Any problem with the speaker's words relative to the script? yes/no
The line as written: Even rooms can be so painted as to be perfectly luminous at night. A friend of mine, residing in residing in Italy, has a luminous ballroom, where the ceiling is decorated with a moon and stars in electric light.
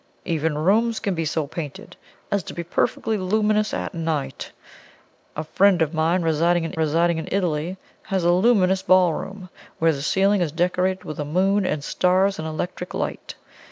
no